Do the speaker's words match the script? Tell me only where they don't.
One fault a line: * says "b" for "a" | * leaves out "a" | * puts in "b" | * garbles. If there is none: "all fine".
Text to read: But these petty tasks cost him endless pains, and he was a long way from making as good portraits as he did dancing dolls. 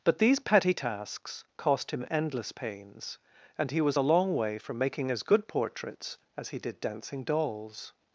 all fine